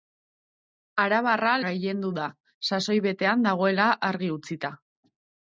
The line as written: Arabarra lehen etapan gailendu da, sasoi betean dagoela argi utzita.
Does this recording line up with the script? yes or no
no